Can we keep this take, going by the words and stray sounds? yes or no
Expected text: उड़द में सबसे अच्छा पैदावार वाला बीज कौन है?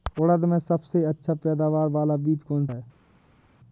yes